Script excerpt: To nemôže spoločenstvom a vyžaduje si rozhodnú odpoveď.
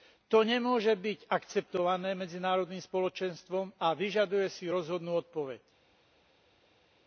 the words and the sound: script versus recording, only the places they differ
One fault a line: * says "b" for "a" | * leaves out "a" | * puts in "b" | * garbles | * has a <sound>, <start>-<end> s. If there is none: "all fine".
* puts in "byť akceptované medzinárodným"